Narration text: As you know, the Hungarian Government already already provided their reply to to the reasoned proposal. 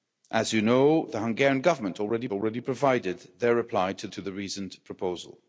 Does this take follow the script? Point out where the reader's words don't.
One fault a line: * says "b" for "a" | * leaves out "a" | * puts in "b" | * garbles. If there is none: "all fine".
all fine